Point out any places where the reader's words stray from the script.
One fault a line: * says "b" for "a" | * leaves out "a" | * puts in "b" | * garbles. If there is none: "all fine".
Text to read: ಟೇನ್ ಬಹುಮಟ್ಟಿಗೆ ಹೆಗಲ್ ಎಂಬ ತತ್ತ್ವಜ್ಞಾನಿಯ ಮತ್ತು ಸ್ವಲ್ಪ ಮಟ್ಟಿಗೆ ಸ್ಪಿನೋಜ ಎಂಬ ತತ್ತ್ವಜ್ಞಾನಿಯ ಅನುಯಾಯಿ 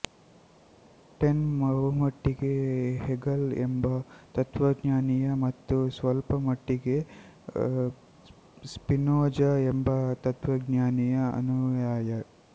all fine